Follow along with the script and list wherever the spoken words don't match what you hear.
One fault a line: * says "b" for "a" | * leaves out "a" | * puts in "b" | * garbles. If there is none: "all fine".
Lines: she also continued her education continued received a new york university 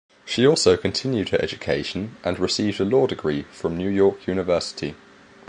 * says "and" for "continued"
* puts in "law degree from"